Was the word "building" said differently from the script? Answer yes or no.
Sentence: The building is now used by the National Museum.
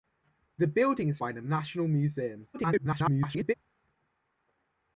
no